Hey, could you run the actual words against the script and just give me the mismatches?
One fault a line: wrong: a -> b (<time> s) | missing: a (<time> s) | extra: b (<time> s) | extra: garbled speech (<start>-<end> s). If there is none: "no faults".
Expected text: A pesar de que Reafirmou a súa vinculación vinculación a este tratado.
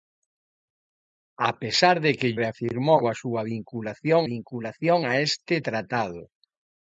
no faults